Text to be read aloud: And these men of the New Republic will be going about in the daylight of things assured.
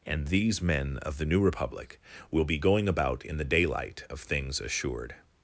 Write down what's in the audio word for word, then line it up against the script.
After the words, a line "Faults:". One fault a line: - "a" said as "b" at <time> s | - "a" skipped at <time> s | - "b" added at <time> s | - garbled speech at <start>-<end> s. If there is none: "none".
And these men of the New Republic will be going about in the daylight of things assured.
Faults:
none